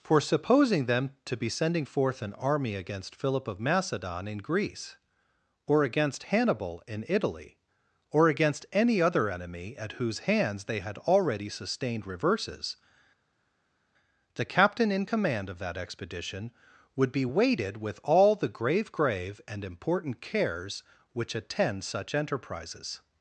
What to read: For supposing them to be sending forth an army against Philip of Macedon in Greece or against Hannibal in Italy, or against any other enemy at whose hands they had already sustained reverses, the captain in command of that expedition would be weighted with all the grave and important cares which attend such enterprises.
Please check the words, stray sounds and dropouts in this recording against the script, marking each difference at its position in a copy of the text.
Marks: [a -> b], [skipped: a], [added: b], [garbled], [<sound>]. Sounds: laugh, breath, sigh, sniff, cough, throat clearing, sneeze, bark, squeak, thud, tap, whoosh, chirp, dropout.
For supposing them to be sending forth an army against Philip of Macedon in Greece or against Hannibal in Italy, or against any other enemy at whose hands they had already sustained reverses, the captain in command of that expedition would be weighted with all the grave [added: grave] and important cares which attend such enterprises.